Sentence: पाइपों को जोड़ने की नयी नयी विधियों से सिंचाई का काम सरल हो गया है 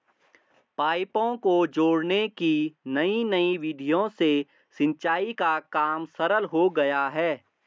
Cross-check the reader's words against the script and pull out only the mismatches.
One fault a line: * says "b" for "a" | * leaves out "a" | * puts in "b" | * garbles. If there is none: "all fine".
all fine